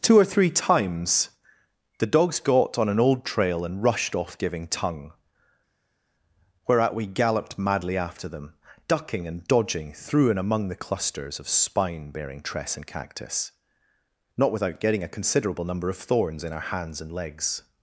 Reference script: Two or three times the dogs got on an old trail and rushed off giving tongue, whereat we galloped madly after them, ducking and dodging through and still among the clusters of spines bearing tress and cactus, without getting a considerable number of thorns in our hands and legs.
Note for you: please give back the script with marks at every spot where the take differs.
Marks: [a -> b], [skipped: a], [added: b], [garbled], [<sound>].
Two or three times the dogs got on an old trail and rushed off giving tongue, whereat we galloped madly after them, ducking and dodging through and [skipped: still] among the clusters of [spines -> spine] bearing tress and cactus, [added: not] without getting a considerable number of thorns in our hands and legs.